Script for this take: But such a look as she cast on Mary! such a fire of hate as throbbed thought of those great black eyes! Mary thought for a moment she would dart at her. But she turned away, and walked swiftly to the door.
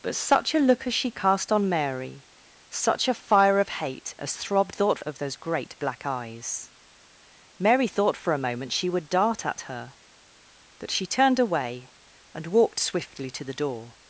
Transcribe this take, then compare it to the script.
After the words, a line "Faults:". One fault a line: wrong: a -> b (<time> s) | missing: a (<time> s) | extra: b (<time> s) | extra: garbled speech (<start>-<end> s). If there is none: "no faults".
But such a look as she cast on Mary! such a fire of hate as throbbed thought of those great black eyes! Mary thought for a moment she would dart at her. But she turned away, and walked swiftly to the door.
Faults:
no faults